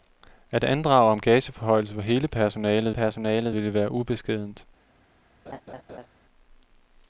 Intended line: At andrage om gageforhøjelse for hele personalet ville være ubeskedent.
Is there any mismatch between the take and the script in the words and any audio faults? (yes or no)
yes